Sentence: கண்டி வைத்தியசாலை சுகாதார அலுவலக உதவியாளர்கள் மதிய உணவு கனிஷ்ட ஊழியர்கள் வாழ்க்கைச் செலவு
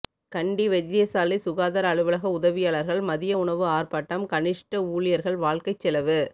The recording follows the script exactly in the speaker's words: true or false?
false